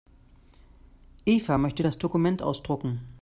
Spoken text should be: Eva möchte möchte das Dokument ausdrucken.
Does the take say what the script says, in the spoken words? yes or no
no